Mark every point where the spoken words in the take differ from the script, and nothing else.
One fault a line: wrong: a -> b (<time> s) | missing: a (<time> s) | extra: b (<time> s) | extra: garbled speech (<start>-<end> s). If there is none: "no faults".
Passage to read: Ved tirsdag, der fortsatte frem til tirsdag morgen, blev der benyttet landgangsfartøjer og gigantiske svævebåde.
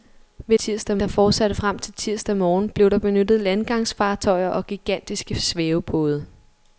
no faults